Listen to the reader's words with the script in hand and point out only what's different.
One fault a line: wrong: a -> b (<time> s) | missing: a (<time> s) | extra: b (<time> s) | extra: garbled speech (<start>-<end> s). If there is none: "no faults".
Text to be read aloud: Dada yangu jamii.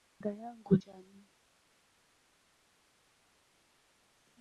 no faults